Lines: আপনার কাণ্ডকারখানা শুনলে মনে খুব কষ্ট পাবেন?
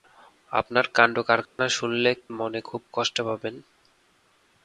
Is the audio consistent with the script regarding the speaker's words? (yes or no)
yes